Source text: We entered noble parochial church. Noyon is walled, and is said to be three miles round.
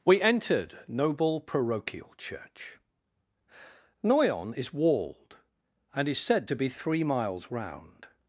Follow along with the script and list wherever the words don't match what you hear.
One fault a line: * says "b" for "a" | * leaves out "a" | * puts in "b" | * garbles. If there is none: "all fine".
all fine